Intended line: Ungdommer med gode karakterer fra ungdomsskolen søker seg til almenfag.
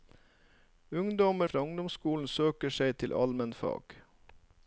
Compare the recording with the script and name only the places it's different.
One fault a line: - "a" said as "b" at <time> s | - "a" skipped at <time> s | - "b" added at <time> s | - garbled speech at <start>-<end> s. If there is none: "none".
- "med gode karakterer" skipped at 1.5 s